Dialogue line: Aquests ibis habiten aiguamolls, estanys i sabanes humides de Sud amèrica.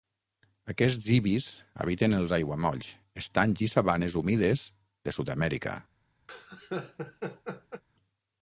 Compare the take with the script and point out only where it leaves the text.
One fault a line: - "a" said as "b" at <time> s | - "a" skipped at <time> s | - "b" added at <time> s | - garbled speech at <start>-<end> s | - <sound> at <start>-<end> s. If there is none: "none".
- "els" added at 2.2 s
- laugh at 6.3-7.8 s